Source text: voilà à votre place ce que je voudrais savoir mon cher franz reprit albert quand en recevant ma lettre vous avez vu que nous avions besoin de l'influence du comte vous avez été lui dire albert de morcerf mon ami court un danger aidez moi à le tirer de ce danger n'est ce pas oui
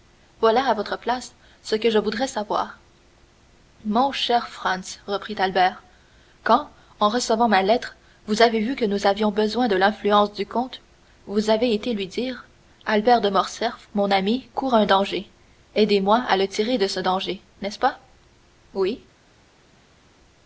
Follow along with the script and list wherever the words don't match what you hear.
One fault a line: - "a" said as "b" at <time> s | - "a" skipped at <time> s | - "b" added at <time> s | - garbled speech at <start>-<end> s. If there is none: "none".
none